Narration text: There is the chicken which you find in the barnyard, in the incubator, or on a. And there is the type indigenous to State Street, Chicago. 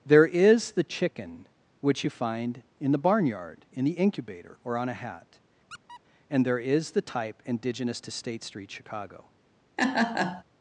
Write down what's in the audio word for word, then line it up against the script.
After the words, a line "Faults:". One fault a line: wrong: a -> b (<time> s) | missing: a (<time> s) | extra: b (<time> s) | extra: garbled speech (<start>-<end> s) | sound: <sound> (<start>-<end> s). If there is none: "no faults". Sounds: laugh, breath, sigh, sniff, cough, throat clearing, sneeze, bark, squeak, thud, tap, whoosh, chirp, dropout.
There is the chicken which you find in the barnyard, in the incubator, or on a hat. And there is the type indigenous to State Street, Chicago.
Faults:
extra: hat (5.0 s)
sound: squeak (5.7-6.0 s)
sound: laugh (9.8-10.4 s)